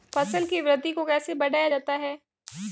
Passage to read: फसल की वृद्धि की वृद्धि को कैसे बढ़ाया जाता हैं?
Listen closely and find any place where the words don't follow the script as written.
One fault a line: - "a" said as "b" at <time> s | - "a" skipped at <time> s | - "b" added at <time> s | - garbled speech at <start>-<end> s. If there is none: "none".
- "की वृद्धि" skipped at 0.9 s